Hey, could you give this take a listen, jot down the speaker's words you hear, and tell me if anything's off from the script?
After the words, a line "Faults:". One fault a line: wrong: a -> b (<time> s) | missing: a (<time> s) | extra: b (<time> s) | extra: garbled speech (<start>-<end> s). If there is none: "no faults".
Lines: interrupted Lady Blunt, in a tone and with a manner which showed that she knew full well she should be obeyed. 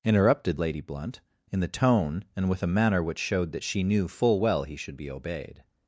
interrupted Lady Blunt, in the tone and with a manner which showed that she knew full well he should be obeyed.
Faults:
wrong: a -> the (1.6 s)
wrong: she -> he (4.6 s)